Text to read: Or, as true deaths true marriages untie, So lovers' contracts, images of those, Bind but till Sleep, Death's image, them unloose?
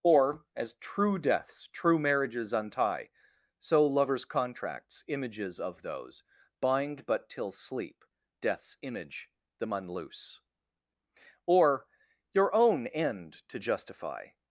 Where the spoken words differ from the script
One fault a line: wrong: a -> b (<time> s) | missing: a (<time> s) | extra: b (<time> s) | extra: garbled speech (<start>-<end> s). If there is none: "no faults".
extra: Or your own end to justify (11.4 s)